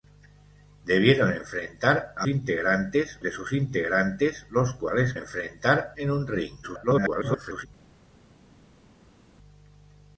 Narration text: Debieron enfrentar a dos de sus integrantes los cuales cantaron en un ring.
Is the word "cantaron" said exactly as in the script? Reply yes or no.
no